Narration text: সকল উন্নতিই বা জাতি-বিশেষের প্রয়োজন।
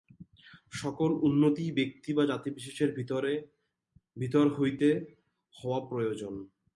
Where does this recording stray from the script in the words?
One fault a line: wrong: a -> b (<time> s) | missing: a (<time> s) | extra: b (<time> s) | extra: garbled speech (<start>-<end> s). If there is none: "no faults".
extra: ব্যক্তি (1.7 s)
extra: ভিতর হইতে হওয়া (4.2 s)